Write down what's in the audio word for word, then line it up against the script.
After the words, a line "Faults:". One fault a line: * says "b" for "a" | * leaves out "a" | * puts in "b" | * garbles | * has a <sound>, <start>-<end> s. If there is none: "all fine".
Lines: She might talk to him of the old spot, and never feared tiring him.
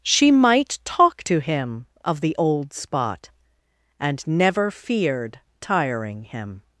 She might talk to him of the old spot, and never feared tiring him.
Faults:
all fine